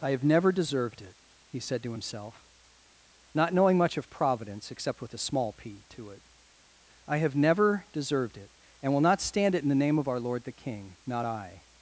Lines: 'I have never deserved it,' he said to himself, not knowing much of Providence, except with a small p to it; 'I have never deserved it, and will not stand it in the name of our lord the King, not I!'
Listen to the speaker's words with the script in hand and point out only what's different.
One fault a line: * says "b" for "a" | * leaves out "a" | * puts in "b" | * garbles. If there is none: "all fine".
all fine